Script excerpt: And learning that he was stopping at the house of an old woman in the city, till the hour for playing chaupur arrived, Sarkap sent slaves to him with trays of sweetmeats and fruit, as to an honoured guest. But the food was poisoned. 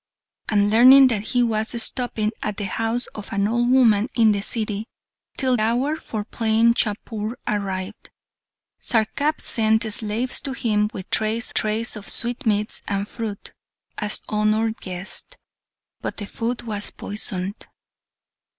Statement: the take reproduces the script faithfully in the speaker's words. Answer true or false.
false